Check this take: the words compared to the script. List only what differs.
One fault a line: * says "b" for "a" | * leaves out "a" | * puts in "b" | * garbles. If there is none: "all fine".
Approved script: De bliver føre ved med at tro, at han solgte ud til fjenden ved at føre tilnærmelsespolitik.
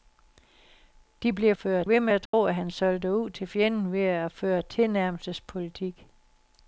all fine